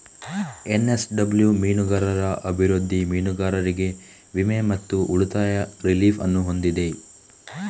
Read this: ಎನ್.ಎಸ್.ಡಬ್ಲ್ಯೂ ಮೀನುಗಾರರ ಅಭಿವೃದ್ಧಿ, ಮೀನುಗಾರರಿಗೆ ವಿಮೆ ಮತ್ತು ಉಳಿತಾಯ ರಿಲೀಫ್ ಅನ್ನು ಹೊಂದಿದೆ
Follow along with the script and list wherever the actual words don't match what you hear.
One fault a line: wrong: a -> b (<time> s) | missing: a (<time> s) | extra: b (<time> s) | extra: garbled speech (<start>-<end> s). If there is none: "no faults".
no faults